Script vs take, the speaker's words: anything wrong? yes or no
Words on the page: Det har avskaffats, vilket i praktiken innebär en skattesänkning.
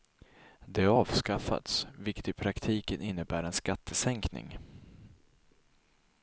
no